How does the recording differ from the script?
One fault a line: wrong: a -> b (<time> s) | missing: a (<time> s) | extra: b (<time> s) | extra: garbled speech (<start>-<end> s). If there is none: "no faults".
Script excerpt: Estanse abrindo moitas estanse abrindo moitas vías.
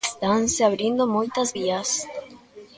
missing: estanse abrindo moitas (1.5 s)